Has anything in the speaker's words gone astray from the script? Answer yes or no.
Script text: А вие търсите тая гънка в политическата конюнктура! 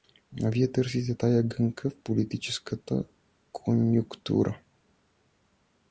no